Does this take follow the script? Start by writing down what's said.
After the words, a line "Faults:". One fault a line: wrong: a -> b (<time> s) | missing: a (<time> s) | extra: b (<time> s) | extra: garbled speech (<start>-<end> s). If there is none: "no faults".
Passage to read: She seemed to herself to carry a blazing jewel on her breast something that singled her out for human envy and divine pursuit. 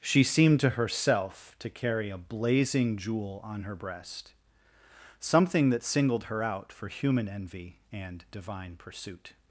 She seemed to herself to carry a blazing jewel on her breast something that singled her out for human envy and divine pursuit.
Faults:
no faults